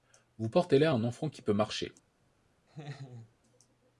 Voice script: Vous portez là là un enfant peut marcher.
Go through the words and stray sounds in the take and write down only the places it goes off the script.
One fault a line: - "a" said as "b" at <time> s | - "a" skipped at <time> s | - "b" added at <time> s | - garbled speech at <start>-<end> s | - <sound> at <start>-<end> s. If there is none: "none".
- "là" skipped at 0.9 s
- "qui" added at 1.3 s
- laugh at 2.7-3.3 s